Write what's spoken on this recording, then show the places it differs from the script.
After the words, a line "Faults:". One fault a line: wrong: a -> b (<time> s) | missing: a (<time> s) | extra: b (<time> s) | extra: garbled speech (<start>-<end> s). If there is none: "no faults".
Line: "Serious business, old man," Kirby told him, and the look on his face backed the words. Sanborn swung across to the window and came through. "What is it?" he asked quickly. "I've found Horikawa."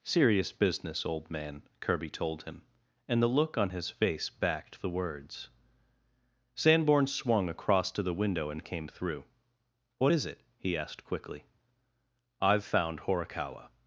"Serious business, old man," Kirby told him, and the look on his face backed the words. Sanborn swung across to the window and came through. "What is it?" he asked quickly. "I've found Horikawa."
Faults:
no faults